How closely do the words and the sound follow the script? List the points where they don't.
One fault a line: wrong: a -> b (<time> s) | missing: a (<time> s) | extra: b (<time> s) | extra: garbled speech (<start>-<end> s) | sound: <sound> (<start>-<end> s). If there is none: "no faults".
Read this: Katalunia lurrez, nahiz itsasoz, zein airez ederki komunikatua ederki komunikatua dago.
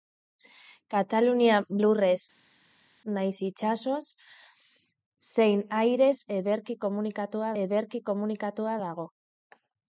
no faults